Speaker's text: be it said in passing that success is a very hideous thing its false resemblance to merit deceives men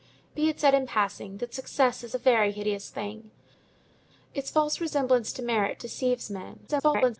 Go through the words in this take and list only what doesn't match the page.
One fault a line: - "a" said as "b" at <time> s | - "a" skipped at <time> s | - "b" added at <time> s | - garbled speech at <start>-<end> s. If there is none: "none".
- garbled speech at 6.7-7.2 s